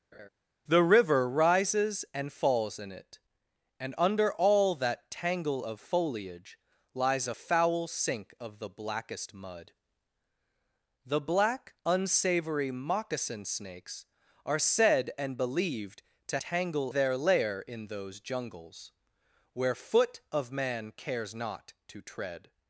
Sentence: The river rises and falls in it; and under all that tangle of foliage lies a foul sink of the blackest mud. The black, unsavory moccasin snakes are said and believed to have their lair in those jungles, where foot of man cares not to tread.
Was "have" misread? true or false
true